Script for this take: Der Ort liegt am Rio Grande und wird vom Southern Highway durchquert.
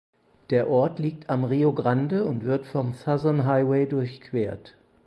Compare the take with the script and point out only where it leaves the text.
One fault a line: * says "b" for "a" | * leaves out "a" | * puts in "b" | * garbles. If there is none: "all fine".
all fine